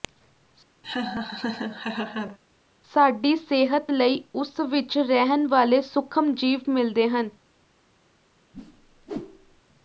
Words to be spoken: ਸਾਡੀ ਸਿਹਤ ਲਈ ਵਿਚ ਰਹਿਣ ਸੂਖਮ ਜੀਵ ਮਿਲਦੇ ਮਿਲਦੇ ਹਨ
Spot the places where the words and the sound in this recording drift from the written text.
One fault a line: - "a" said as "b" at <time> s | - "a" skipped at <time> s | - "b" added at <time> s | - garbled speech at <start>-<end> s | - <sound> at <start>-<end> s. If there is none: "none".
- laugh at 0.8-2.4 s
- "ਉਸ" added at 4.3 s
- "ਵਾਲੇ" added at 5.5 s
- "ਮਿਲਦੇ" skipped at 7.1 s
- whoosh at 8.5-9.6 s